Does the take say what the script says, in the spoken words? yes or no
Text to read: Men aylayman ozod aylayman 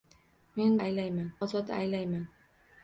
yes